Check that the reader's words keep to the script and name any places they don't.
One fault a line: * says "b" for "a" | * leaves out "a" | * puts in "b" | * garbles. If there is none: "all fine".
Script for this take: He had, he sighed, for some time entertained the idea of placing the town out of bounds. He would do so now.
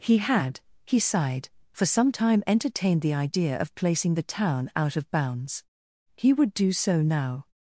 all fine